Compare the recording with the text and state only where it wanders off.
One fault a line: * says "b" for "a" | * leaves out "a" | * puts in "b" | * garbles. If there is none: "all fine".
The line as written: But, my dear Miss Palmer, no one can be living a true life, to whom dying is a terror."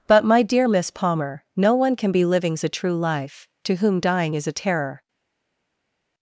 * says "livings" for "living"